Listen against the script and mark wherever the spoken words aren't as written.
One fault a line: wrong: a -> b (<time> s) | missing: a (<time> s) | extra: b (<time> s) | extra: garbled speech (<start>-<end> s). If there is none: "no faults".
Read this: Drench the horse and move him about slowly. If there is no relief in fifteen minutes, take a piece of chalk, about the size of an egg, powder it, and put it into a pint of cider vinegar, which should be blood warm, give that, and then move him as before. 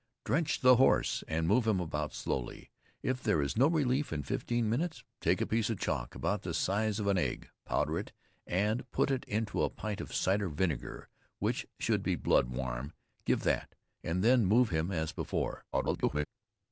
extra: garbled speech (15.7-16.3 s)